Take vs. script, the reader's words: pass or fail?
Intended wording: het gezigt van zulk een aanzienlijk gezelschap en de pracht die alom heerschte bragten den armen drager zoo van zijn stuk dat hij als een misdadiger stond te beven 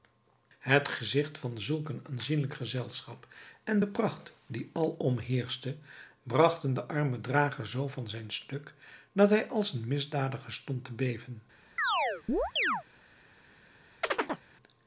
pass